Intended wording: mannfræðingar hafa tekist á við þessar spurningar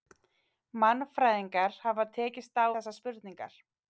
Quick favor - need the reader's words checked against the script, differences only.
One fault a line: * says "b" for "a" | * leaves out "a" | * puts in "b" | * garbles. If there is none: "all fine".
* leaves out "við"